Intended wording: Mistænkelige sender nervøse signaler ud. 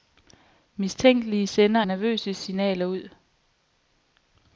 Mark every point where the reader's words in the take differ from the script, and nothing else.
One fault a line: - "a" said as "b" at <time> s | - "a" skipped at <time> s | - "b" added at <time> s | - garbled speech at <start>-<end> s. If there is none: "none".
none